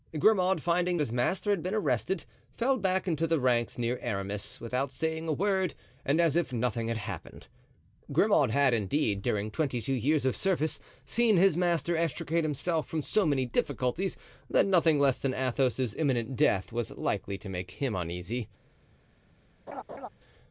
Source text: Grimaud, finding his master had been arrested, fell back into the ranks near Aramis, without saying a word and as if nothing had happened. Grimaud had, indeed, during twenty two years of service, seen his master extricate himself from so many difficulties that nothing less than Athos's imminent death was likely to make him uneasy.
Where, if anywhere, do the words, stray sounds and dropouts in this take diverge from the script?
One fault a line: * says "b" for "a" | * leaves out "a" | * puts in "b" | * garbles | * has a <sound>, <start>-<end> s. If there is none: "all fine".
* has a laugh, 19.7-20.1 s